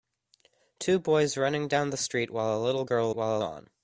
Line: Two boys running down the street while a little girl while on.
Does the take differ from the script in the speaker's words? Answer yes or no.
no